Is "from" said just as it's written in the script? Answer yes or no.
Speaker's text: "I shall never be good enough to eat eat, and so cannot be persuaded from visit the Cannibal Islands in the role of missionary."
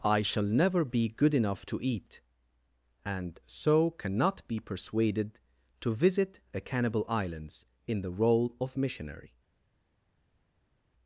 no